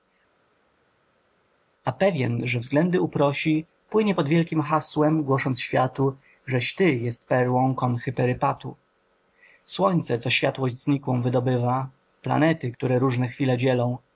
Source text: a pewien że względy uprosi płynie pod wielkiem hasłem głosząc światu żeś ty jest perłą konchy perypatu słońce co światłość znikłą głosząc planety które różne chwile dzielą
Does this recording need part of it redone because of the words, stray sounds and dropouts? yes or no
yes